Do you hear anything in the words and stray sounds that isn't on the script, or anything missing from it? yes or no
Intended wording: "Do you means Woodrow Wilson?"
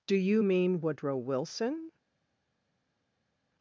yes